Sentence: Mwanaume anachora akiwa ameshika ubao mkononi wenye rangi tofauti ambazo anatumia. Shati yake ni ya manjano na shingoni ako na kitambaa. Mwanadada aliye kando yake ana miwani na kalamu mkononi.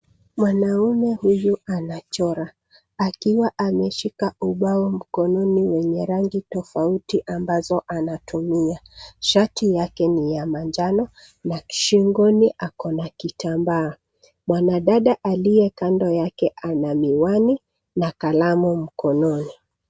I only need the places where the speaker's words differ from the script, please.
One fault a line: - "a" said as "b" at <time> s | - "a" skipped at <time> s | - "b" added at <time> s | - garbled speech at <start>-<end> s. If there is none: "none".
- "huyu" added at 1.1 s